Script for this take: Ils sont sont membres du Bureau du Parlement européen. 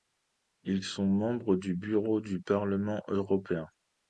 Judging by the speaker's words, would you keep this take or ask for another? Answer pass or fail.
fail